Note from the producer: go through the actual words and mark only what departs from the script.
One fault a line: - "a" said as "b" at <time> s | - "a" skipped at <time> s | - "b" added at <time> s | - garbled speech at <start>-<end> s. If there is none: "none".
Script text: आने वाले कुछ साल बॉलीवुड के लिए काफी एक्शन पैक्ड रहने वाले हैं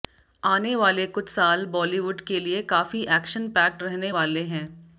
none